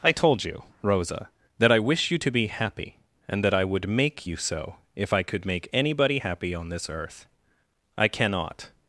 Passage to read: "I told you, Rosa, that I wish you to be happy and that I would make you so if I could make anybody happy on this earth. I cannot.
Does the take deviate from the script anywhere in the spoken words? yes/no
no